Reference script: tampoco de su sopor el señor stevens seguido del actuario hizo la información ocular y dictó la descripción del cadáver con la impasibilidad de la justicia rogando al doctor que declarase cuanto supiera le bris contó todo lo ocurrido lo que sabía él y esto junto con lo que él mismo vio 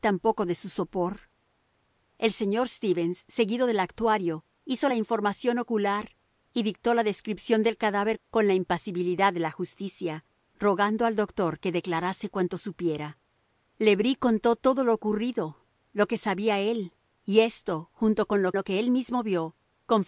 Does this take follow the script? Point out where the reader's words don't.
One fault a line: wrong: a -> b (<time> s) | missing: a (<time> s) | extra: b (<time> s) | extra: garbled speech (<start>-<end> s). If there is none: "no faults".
extra: lo (18.5 s)